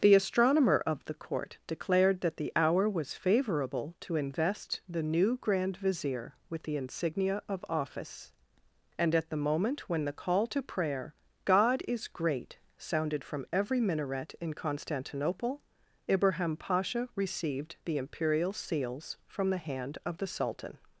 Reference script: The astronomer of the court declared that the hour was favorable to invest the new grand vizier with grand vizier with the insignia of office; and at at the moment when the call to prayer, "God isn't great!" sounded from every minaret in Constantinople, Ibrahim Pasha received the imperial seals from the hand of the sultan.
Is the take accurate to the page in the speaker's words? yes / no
no